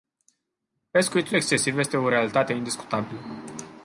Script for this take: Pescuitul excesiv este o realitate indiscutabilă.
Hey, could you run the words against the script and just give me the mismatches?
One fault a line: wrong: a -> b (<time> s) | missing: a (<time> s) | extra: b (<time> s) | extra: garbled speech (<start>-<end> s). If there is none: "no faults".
no faults